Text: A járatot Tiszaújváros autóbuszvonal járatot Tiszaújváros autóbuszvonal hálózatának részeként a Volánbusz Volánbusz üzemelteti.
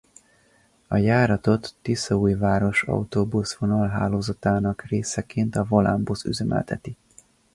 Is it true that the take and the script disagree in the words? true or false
true